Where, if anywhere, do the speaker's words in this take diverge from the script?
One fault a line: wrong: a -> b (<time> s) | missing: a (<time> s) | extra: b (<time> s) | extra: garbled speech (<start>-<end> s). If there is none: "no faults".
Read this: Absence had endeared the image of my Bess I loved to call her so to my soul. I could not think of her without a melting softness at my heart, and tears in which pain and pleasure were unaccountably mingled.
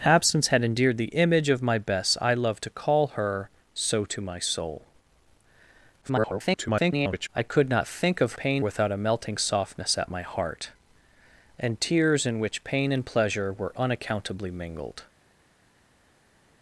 extra: garbled speech (6.0-7.3 s)
wrong: her -> pain (8.4 s)